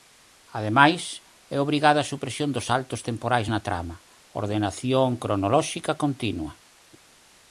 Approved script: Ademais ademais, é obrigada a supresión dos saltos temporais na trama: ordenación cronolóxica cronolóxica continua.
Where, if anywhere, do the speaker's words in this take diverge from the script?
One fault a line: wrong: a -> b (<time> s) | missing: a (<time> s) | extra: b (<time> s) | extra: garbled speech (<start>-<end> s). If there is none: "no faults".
missing: ademais (1.0 s)
missing: cronolóxica (5.9 s)